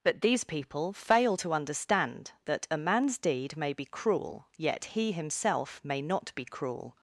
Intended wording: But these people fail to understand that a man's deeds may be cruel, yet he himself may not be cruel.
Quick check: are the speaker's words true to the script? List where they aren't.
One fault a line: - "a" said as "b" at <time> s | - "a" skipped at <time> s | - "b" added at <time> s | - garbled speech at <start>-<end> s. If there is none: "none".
- "deeds" said as "deed" at 3.2 s